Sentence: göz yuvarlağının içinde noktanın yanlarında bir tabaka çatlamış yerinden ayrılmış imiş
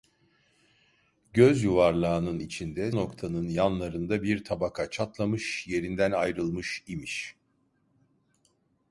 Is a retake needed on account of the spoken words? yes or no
no